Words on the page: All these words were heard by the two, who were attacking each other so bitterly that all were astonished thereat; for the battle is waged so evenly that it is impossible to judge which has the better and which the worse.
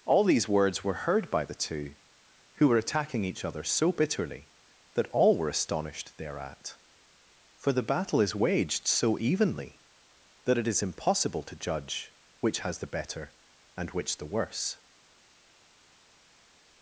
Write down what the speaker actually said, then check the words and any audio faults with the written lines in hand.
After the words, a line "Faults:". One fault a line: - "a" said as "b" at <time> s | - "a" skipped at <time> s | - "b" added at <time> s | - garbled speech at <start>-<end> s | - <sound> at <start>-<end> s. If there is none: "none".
All these words were heard by the two, who were attacking each other so bitterly that all were astonished thereat; for the battle is waged so evenly that it is impossible to judge which has the better and which the worse.
Faults:
none